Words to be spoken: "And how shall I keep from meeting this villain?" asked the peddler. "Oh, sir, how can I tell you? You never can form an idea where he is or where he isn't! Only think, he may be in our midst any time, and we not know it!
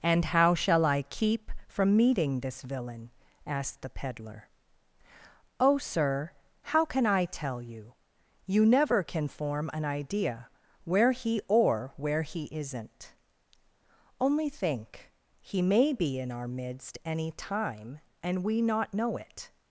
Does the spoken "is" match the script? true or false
false